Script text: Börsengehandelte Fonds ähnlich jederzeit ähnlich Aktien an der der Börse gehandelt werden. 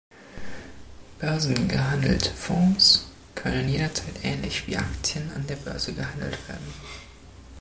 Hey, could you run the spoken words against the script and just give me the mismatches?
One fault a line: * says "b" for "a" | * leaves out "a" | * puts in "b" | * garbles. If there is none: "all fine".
* says "können" for "ähnlich"
* puts in "wie"
* leaves out "der"